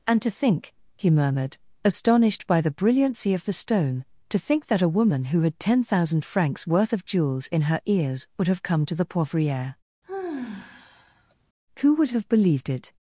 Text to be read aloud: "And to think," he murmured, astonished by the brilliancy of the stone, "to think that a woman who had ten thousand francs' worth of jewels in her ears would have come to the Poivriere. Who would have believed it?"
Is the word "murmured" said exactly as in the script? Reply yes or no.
yes